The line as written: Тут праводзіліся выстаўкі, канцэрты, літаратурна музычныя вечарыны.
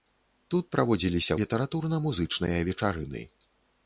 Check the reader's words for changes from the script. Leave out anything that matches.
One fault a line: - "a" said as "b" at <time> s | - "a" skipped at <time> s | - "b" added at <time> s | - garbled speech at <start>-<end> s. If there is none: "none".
- "выстаўкі канцэрты" skipped at 1.4 s